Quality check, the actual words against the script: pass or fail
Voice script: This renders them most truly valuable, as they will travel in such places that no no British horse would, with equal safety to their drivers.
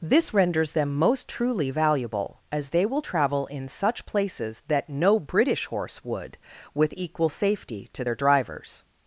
fail